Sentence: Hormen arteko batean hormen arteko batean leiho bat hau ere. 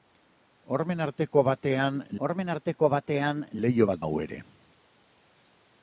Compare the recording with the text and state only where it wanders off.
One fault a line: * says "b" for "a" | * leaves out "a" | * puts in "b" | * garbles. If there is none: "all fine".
all fine